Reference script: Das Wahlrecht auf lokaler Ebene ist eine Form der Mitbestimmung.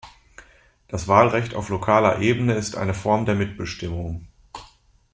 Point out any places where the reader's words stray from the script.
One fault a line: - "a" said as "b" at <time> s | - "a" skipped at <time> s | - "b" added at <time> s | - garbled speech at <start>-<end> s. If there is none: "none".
none